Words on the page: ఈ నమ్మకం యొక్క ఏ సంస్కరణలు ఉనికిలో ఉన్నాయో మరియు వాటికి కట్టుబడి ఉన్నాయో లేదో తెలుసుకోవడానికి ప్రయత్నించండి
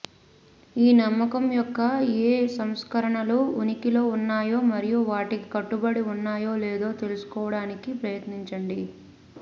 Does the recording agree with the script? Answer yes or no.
yes